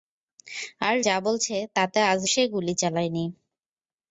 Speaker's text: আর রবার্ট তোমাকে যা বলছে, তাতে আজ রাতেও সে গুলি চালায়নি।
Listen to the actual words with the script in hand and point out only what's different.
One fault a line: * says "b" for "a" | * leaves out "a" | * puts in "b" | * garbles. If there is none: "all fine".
* leaves out "রবার্ট তোমাকে"
* leaves out "রাতেও"